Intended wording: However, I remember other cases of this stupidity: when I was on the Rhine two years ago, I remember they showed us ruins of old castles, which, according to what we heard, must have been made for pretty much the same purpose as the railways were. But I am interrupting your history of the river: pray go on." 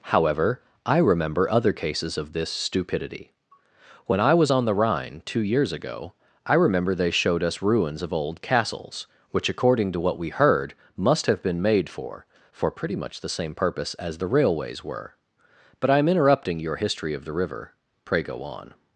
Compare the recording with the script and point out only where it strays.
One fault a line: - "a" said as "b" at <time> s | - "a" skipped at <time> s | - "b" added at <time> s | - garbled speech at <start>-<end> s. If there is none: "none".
- "for" added at 12.5 s